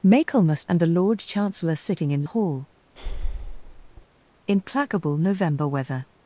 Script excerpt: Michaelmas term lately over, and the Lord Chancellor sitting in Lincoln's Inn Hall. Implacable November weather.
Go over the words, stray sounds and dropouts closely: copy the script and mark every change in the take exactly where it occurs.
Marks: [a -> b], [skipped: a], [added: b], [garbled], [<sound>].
Michaelmas [skipped: term lately over,] and the Lord Chancellor sitting in [skipped: Lincoln's Inn] Hall. [breath] Implacable November weather.